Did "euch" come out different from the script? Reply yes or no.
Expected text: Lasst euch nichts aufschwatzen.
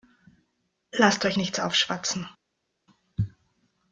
no